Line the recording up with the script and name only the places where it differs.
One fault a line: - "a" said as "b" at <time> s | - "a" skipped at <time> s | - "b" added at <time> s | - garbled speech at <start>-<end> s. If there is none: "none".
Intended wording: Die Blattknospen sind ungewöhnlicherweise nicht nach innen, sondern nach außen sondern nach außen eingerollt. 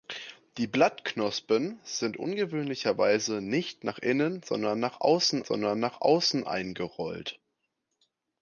none